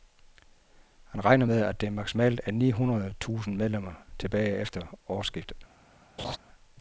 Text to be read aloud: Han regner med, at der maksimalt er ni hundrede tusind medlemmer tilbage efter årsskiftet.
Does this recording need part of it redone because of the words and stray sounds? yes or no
yes